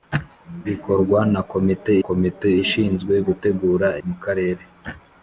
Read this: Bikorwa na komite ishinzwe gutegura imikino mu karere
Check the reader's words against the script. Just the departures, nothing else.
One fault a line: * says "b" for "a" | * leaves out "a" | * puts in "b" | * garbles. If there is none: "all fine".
* puts in "komite"
* leaves out "imikino"